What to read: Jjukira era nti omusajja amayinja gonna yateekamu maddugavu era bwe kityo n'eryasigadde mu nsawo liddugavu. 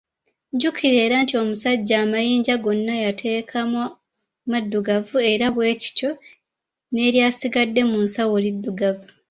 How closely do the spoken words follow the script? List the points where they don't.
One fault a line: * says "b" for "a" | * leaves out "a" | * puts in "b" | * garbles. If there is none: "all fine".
all fine